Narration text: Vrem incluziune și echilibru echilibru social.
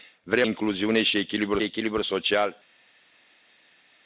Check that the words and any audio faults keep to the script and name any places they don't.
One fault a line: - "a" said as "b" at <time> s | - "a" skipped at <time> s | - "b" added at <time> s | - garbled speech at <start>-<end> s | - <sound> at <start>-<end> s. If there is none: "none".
none